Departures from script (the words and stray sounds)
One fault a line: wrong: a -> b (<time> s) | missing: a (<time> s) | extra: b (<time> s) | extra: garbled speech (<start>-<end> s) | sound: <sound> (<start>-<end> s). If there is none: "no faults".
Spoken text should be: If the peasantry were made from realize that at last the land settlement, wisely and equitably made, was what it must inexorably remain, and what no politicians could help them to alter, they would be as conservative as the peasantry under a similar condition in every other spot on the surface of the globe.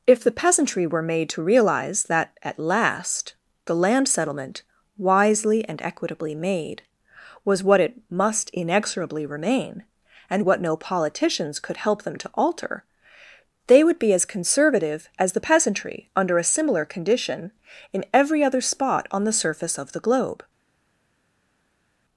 wrong: from -> to (1.3 s)